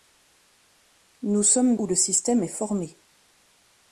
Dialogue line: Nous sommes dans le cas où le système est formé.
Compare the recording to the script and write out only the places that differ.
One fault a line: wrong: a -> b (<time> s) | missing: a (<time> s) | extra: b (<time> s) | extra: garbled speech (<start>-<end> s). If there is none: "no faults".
missing: dans le cas (1.8 s)